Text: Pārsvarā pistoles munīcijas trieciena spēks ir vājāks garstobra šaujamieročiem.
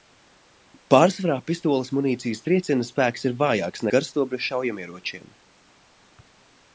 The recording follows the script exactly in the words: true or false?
true